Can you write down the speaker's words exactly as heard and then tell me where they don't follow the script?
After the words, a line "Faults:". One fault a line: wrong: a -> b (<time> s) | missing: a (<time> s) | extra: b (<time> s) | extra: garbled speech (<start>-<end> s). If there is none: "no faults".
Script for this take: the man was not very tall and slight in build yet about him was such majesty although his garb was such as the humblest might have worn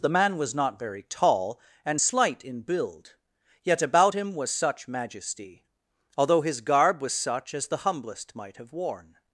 the man was not very tall and slight in build yet about him was such majesty although his garb was such as the humblest might have worn
Faults:
no faults